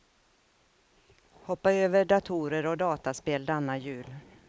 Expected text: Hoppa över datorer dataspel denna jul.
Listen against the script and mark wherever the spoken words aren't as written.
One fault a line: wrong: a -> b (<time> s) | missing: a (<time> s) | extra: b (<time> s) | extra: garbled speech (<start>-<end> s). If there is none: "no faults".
extra: och (2.6 s)